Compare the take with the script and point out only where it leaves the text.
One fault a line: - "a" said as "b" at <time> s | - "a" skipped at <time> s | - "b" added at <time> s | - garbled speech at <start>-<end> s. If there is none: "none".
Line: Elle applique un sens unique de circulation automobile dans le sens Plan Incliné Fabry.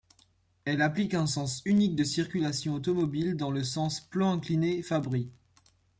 none